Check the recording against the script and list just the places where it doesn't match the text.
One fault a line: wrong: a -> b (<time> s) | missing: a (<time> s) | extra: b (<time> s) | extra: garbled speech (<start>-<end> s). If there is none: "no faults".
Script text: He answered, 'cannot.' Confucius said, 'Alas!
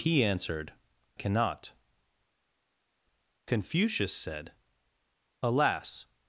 no faults